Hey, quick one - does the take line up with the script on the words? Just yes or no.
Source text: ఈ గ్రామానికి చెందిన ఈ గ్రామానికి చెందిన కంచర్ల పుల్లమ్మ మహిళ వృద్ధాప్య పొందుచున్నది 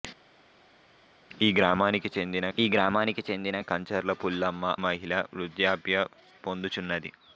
yes